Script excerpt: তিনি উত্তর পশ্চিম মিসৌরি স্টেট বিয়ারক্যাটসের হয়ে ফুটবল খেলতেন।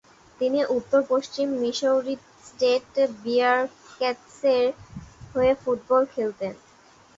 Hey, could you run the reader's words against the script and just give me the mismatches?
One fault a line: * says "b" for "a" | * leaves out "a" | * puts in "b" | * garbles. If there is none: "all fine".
all fine